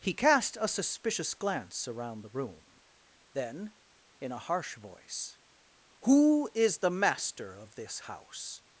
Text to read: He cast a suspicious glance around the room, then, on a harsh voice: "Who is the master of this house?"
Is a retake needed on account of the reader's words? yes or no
yes